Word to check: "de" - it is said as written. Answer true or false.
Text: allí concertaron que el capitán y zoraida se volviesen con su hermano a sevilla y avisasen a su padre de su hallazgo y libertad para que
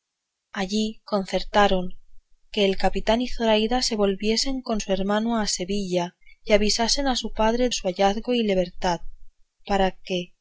false